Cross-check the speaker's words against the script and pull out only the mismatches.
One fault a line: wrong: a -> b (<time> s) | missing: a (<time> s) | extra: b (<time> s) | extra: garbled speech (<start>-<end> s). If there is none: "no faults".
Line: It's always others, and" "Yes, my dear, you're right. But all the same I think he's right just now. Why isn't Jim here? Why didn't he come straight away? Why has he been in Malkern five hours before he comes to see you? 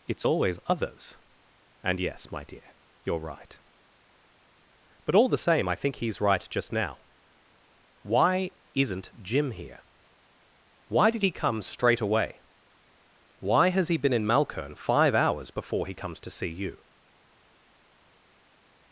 wrong: didn't -> did (11.1 s)